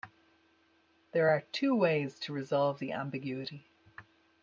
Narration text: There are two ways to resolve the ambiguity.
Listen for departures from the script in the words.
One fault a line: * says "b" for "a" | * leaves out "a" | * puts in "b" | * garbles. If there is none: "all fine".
all fine